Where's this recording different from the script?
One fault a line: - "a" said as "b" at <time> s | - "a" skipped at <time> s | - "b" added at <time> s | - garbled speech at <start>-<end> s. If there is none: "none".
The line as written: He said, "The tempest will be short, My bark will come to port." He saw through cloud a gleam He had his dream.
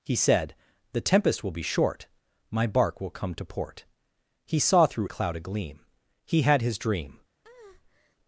none